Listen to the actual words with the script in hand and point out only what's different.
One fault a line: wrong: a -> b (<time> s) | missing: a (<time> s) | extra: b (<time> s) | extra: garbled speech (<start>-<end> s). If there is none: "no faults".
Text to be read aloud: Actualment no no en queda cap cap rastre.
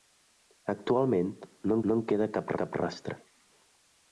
no faults